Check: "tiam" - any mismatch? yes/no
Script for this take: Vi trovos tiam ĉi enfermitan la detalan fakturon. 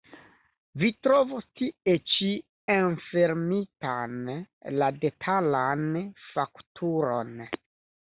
yes